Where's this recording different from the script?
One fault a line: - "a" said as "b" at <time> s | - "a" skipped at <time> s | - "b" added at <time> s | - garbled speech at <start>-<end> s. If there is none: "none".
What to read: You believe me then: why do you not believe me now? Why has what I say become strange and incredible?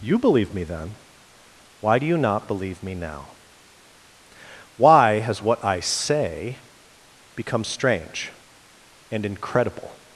none